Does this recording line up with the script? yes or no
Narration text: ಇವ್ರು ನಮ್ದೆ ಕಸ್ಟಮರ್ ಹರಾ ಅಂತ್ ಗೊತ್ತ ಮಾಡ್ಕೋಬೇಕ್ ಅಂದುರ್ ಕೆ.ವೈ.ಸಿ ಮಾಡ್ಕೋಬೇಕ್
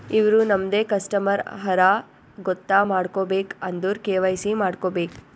no